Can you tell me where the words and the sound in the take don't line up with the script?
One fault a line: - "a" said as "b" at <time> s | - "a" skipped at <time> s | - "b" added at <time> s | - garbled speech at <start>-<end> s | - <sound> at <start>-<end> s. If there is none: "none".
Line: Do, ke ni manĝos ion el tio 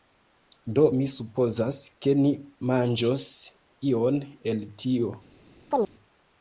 - "mi supozas" added at 1.0 s
- chirp at 5.7-5.9 s